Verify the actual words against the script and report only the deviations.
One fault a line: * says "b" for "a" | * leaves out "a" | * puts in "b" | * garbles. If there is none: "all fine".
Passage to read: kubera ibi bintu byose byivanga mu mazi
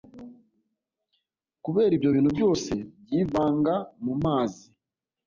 * says "ibyo" for "ibi"